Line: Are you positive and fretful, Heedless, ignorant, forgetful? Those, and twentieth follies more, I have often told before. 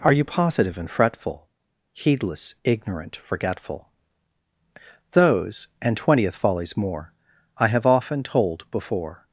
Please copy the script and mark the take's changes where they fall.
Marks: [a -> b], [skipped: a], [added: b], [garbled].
Are you positive and fretful, Heedless, ignorant, forgetful? Those, and twentieth follies more, I have often told before.